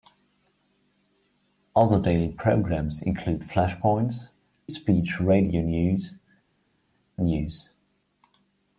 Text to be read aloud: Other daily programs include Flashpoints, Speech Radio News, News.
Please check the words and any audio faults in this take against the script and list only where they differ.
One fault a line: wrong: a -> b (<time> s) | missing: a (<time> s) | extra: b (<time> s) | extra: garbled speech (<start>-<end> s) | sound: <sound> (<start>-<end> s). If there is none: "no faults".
no faults